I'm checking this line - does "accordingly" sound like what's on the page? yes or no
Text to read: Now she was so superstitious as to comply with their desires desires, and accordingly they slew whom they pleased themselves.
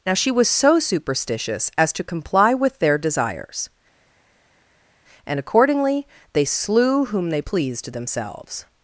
yes